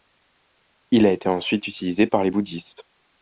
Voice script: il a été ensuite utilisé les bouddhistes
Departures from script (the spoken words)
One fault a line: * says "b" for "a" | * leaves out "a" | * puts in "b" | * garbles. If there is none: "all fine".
* puts in "par"